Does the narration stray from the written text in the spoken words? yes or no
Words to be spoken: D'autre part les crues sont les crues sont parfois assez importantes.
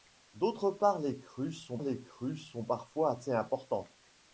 no